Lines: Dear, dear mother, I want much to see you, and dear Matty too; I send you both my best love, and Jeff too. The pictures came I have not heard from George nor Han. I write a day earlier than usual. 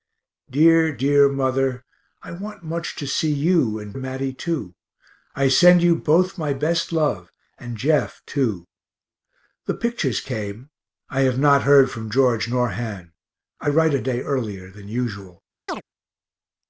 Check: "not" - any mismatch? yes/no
no